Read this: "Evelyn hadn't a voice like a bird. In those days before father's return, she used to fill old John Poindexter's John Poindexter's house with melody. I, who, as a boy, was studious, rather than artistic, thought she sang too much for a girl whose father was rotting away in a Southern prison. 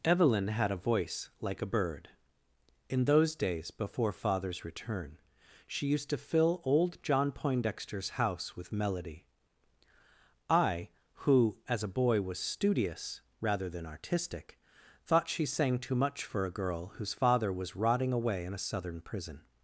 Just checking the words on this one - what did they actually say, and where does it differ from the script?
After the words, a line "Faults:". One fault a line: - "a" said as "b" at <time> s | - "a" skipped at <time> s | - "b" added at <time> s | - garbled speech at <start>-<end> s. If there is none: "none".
"Evelyn had a voice like a bird. In those days before father's return, she used to fill old John Poindexter's house with melody. I, who, as a boy, was studious, rather than artistic, thought she sang too much for a girl whose father was rotting away in a Southern prison.
Faults:
- "hadn't" said as "had" at 0.5 s
- "John Poindexter's" skipped at 8.1 s